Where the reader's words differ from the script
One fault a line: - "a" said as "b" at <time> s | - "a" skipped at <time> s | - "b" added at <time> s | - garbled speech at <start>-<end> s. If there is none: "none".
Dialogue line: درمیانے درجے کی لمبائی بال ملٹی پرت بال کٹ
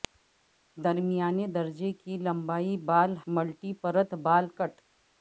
none